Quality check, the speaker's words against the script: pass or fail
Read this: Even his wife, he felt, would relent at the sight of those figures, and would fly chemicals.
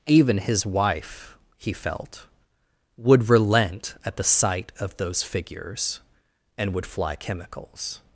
pass